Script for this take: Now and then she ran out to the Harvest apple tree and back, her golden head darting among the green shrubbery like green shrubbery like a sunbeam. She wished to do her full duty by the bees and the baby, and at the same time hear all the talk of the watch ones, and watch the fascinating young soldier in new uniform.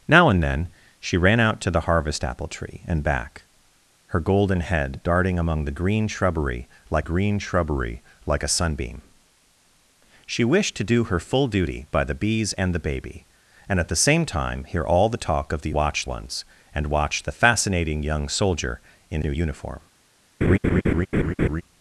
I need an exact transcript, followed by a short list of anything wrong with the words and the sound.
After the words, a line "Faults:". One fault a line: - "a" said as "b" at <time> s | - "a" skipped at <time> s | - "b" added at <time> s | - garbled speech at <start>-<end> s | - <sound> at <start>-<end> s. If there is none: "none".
Now and then she ran out to the Harvest apple tree and back, her golden head darting among the green shrubbery like green shrubbery like a sunbeam. She wished to do her full duty by the bees and the baby, and at the same time hear all the talk of the watch ones, and watch the fascinating young soldier in new uniform.
Faults:
- laugh at 20.4-21.6 s